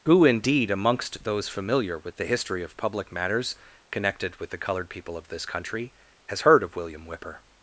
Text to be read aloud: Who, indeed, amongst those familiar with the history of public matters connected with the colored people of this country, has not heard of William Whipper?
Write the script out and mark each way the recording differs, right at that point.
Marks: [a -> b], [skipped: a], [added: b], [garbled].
Who, indeed, amongst those familiar with the history of public matters connected with the colored people of this country, has [skipped: not] heard of William Whipper?